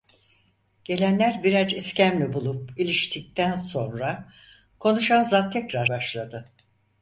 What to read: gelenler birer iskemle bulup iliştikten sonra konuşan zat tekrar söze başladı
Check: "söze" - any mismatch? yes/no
yes